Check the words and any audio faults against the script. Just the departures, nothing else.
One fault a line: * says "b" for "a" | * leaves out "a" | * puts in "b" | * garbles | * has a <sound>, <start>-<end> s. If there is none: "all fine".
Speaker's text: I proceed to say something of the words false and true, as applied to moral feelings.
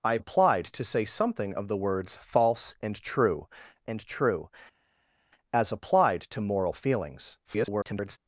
* says "applied" for "proceed"
* puts in "and true"
* garbles